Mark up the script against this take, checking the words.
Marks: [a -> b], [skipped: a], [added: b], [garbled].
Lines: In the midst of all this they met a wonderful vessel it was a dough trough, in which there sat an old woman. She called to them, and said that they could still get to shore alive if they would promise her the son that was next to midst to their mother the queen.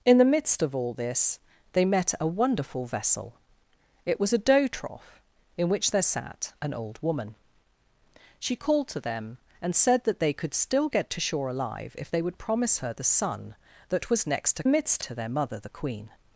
In the midst of all this they met a wonderful vessel it was a dough trough, in which there sat an old woman. She called to them, and said that they could still get to shore alive if they would promise her the son that was next to midst to their mother the queen.